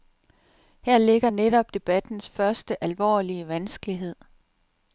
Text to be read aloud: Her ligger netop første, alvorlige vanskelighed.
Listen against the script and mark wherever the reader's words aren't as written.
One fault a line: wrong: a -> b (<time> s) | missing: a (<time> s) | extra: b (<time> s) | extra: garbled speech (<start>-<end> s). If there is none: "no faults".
extra: debattens (1.7 s)